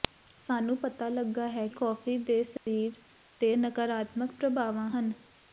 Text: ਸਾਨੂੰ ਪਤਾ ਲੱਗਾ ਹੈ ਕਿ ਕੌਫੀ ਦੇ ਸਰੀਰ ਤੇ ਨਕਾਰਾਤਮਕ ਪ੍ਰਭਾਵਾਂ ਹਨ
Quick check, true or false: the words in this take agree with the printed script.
false